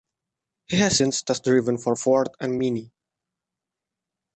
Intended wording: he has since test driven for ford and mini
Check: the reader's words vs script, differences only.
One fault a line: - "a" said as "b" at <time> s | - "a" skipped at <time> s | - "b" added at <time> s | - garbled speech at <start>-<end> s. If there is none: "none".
none